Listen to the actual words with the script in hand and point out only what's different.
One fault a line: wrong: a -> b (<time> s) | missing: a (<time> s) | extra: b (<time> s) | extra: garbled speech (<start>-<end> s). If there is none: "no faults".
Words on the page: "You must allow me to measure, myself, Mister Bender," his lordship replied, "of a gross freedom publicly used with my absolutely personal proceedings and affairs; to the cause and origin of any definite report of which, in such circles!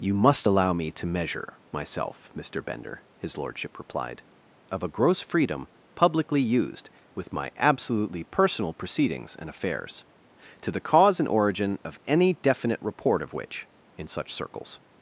no faults